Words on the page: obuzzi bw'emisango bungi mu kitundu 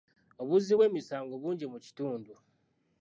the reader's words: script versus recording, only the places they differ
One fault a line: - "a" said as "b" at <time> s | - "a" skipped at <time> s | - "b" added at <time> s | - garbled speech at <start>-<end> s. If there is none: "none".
none